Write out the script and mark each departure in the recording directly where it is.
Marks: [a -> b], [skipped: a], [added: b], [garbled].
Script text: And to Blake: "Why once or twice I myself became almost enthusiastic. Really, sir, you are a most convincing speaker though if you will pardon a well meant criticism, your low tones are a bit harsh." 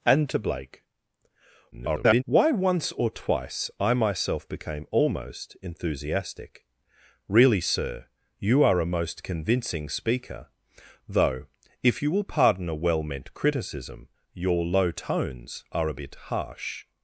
And to Blake: [garbled] "Why once or twice I myself became almost enthusiastic. Really, sir, you are a most convincing speaker though if you will pardon a well meant criticism, your low tones are a bit harsh."